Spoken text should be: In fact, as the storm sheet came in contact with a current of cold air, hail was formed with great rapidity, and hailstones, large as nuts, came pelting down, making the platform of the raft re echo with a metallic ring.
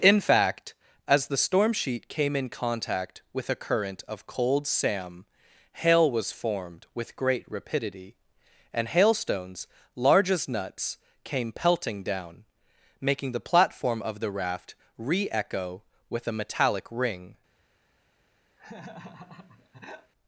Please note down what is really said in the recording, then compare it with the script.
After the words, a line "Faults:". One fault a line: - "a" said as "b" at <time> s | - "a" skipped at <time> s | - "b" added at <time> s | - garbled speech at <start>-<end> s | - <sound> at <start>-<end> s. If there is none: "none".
In fact, as the storm sheet came in contact with a current of cold sam, hail was formed with great rapidity, and hailstones, large as nuts, came pelting down, making the platform of the raft re echo with a metallic ring.
Faults:
- "air" said as "sam" at 4.7 s
- laugh at 18.6-20.1 s